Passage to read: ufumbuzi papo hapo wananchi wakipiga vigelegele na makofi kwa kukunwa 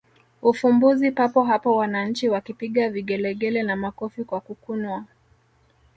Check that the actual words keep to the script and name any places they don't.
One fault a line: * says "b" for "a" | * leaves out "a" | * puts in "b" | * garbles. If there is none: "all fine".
all fine